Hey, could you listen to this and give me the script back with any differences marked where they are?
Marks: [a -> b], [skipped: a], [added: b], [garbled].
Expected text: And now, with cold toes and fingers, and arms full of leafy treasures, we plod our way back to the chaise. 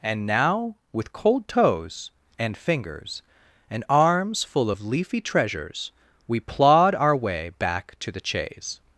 And now, with cold toes and fingers, and arms full of leafy treasures, we plod our way back to the chaise.